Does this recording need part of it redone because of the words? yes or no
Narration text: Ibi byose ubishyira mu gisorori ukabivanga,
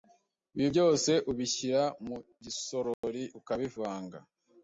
no